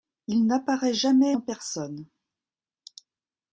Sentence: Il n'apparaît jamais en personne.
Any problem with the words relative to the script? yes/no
no